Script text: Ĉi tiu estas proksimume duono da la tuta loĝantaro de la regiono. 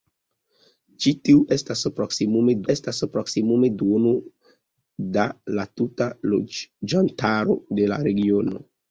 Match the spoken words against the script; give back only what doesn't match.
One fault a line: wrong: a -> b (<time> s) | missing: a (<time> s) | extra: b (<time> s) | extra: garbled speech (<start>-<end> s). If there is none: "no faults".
extra: estas proksimume (2.7 s)